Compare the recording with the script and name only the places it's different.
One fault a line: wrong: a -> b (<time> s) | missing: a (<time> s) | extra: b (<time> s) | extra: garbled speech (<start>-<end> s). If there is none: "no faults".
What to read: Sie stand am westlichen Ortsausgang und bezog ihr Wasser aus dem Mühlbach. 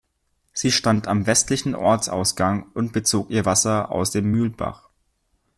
no faults